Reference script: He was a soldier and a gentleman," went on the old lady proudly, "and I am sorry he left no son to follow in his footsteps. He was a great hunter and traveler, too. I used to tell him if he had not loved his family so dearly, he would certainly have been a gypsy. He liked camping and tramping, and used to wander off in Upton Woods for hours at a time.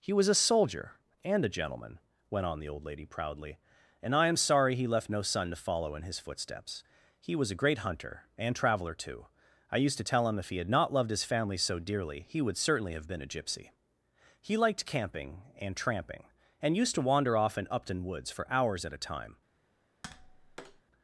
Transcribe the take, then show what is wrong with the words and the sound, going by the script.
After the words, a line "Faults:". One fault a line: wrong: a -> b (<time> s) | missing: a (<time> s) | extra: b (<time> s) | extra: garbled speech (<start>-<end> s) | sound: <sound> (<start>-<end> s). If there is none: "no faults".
He was a soldier and a gentleman," went on the old lady proudly, "and I am sorry he left no son to follow in his footsteps. He was a great hunter and traveler, too. I used to tell him if he had not loved his family so dearly, he would certainly have been a gypsy. He liked camping and tramping, and used to wander off in Upton Woods for hours at a time.
Faults:
sound: tap (20.0-20.8 s)